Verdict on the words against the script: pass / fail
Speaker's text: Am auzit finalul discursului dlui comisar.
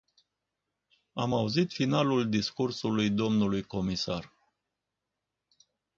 pass